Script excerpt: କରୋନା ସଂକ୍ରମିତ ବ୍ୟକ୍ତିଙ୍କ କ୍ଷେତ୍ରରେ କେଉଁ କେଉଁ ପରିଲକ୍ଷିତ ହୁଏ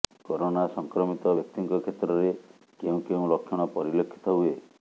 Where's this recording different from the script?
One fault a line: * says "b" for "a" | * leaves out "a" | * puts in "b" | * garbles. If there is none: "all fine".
* puts in "ଲକ୍ଷଣ"